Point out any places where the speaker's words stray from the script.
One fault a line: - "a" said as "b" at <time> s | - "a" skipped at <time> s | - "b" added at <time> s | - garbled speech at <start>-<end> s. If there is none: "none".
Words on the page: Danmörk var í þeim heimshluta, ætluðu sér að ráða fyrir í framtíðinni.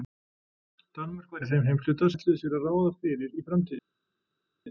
none